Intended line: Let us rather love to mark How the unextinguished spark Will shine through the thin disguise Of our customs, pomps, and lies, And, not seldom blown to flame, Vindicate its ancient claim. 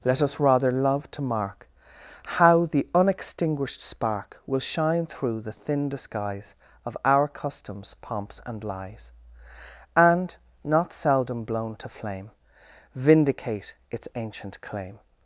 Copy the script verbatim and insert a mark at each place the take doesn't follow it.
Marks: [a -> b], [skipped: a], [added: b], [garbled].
Let us rather love to mark How the unextinguished spark Will shine through the thin disguise Of our customs, pomps, and lies, And, not seldom blown to flame, Vindicate its ancient claim.